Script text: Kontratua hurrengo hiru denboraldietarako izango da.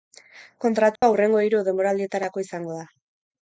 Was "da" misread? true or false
false